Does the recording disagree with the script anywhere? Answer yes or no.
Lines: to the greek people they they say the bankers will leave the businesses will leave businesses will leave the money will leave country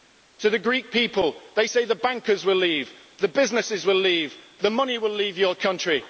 yes